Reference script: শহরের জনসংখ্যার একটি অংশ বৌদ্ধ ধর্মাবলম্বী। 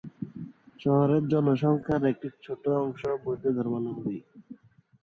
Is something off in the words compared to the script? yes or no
yes